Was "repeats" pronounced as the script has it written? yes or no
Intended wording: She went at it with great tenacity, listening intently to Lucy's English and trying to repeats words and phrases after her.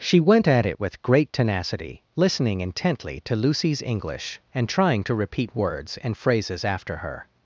no